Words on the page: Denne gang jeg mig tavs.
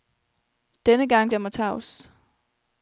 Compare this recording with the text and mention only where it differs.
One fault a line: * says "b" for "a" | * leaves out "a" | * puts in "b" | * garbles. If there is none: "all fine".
all fine